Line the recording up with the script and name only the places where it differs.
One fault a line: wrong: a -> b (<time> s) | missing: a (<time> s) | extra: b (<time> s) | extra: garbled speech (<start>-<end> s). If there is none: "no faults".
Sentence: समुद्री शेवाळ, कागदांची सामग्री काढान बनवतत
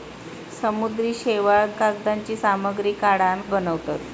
no faults